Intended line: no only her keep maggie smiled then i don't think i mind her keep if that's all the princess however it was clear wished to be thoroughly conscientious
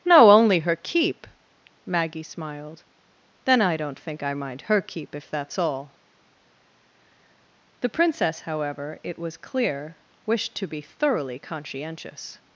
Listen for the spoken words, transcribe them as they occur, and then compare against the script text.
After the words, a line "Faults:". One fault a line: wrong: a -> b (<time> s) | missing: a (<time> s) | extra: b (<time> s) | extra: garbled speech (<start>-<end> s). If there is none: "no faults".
no only her keep maggie smiled then i don't think i mind her keep if that's all the princess however it was clear wished to be thoroughly conscientious
Faults:
no faults